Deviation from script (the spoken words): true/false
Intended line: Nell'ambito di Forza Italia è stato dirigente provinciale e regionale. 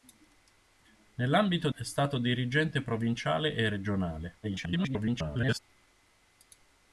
true